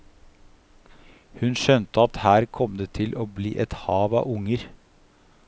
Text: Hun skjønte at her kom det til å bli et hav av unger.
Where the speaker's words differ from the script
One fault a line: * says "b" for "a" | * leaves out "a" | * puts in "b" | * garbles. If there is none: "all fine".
all fine